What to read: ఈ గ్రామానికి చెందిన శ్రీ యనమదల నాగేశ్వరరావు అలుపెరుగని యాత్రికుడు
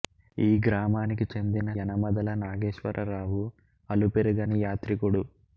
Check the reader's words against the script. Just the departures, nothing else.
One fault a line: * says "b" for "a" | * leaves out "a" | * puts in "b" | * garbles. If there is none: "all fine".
* leaves out "శ్రీ"